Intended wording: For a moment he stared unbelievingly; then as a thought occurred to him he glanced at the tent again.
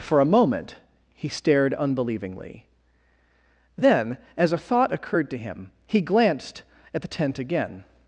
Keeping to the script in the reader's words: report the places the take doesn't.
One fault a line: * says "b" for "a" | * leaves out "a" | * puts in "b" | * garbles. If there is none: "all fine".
all fine